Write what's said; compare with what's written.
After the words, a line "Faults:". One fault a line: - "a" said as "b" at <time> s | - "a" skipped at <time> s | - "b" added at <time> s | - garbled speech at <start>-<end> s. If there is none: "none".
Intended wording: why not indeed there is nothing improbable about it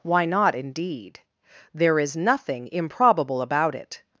why not indeed there is nothing improbable about it
Faults:
none